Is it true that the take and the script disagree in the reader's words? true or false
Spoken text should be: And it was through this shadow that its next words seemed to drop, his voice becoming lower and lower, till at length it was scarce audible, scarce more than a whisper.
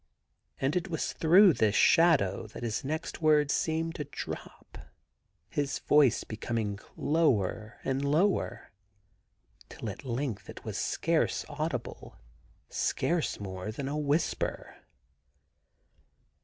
true